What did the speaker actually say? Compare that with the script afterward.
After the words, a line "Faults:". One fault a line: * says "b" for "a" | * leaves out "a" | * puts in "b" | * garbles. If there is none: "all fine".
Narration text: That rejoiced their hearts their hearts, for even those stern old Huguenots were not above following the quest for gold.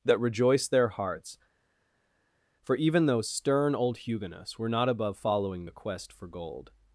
That rejoiced their hearts, for even those stern old Huguenots were not above following the quest for gold.
Faults:
* leaves out "their hearts"